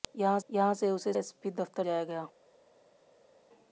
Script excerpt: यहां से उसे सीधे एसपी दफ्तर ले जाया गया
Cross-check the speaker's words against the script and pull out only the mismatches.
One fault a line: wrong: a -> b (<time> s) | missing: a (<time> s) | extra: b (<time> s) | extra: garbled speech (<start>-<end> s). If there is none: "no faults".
extra: यहां (0.5 s)
missing: सीधे (1.1 s)
missing: ले (1.9 s)